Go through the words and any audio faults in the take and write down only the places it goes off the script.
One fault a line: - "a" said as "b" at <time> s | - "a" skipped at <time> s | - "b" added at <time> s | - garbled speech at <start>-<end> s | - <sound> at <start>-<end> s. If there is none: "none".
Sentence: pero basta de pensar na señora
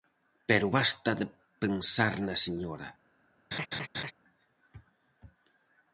- laugh at 3.5-4.1 s